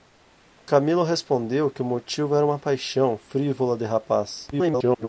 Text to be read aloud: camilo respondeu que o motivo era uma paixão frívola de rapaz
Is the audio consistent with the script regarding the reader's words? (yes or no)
no